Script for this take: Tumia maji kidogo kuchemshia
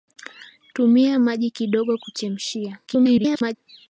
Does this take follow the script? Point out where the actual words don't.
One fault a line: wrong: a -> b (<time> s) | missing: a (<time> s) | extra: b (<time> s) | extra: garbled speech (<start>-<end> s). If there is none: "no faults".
extra: garbled speech (2.9-3.6 s)